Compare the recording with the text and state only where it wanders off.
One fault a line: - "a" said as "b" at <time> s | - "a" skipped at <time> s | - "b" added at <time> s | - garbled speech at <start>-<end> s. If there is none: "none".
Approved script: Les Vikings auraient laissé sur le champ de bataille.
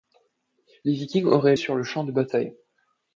- "laissé" skipped at 1.6 s